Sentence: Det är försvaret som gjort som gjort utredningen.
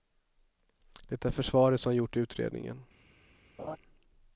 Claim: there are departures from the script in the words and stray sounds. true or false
true